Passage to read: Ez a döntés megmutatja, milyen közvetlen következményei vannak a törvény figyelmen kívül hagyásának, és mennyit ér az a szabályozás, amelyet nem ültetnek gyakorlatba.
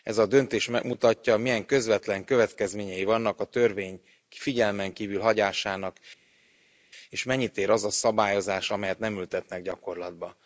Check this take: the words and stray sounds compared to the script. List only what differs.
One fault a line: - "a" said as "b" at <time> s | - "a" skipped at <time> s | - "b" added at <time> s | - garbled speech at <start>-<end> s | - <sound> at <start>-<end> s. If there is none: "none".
none